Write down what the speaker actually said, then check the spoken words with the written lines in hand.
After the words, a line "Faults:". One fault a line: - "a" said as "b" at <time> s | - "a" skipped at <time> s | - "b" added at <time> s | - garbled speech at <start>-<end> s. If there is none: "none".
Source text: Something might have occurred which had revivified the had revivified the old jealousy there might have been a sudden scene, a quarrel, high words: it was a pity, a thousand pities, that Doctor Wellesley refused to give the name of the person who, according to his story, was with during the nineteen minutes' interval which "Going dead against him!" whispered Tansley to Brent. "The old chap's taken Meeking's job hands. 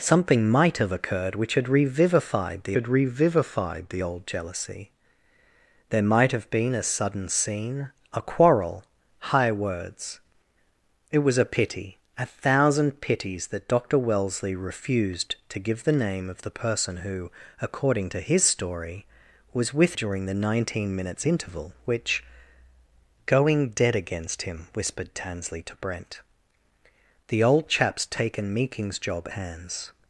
Something might have occurred which had revivified the had revivified the old jealousy there might have been a sudden scene, a quarrel, high words: it was a pity, a thousand pities, that Doctor Wellesley refused to give the name of the person who, according to his story, was with during the nineteen minutes' interval which "Going dead against him!" whispered Tansley to Brent. "The old chap's taken Meeking's job hands.
Faults:
none